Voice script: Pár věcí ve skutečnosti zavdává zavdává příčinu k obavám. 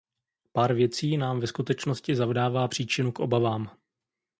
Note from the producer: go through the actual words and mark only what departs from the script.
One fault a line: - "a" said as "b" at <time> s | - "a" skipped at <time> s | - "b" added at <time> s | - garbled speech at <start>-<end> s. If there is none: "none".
- "nám" added at 1.2 s
- "zavdává" skipped at 2.7 s